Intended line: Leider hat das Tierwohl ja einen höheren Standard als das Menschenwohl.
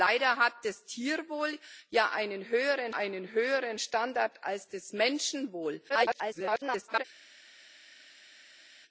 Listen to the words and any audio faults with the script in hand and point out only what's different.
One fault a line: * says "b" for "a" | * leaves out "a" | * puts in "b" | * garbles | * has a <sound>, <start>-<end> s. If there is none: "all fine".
* puts in "einen höheren"
* garbles